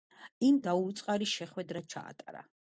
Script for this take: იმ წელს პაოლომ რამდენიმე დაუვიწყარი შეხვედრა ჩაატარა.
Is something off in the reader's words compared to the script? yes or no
yes